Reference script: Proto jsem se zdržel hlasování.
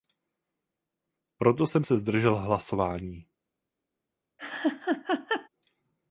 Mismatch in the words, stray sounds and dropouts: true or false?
true